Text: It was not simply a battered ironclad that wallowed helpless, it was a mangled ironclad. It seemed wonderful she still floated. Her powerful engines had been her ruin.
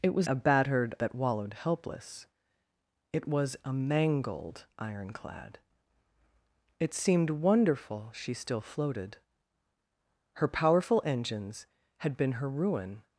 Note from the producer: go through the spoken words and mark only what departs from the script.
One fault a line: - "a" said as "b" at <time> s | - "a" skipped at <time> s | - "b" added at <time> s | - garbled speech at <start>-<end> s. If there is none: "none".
- "not simply" skipped at 0.3 s
- "ironclad" skipped at 1.0 s